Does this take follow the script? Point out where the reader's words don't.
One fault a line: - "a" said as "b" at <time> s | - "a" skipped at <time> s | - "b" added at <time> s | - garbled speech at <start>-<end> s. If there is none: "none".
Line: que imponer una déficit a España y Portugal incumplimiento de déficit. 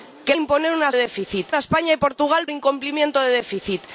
none